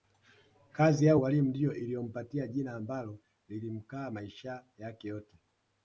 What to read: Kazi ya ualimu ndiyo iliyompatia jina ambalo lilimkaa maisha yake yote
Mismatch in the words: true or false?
false